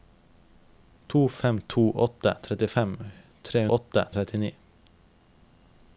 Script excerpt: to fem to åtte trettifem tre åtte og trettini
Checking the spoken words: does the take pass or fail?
pass